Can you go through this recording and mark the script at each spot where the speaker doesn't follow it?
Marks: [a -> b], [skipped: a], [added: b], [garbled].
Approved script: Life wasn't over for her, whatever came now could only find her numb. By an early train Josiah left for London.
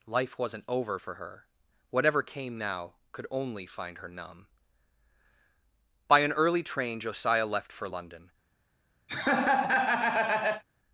Life wasn't over for her, whatever came now could only find her numb. By an early train Josiah left for London.